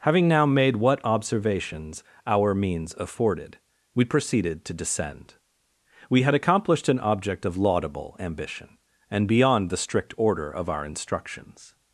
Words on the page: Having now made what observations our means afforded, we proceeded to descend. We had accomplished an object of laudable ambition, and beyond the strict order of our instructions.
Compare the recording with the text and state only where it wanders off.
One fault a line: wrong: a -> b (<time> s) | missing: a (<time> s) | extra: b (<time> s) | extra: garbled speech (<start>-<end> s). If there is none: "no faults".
no faults